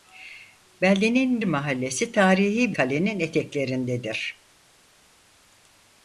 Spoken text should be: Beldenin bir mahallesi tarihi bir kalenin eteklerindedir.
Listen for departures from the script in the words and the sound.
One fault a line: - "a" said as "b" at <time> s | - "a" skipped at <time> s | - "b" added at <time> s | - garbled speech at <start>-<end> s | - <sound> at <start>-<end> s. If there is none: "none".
- "bir" skipped at 1.4 s
- "bir" skipped at 2.7 s